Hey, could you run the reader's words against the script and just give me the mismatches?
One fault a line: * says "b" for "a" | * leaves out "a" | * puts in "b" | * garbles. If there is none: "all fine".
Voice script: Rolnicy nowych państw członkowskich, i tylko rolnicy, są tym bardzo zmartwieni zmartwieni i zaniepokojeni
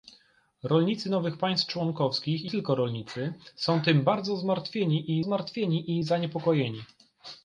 all fine